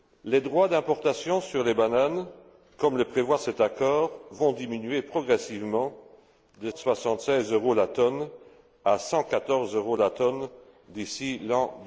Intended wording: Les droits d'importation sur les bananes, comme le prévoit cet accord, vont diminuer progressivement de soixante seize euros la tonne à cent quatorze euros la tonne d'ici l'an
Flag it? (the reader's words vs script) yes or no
no